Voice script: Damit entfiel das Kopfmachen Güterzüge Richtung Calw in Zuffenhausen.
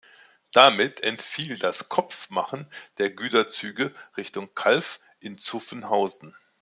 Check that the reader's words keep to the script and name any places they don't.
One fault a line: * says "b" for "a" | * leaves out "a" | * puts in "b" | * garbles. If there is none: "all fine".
* puts in "der"